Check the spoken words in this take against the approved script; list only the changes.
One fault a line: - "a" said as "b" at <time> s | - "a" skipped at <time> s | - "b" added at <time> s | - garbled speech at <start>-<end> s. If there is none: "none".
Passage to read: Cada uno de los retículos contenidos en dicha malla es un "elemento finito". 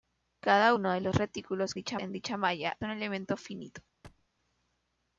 - "contenidos" said as "dicha" at 1.7 s
- "es" skipped at 2.8 s